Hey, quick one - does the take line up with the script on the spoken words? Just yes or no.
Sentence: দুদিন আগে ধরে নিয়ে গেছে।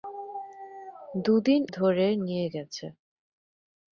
no